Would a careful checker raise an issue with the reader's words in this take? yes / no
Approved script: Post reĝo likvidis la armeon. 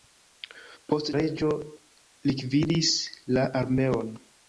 no